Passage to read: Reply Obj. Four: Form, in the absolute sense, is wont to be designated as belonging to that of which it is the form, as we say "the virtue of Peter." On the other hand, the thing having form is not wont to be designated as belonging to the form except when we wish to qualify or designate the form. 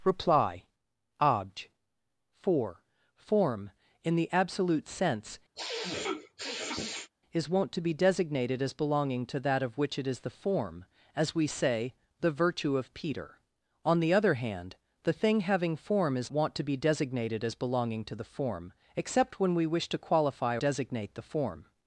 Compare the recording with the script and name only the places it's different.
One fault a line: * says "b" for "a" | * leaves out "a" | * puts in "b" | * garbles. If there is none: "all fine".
* leaves out "not"
* leaves out "or"